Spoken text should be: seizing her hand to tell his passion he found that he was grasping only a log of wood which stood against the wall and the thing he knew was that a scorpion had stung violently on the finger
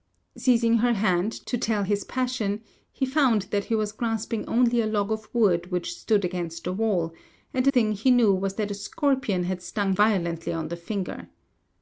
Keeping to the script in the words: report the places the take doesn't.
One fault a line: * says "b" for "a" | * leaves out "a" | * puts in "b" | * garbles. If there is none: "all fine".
all fine